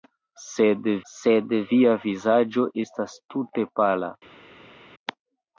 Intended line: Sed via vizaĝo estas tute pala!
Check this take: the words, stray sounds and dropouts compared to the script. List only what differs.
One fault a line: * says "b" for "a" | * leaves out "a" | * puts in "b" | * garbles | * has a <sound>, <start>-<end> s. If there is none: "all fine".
* puts in "sed"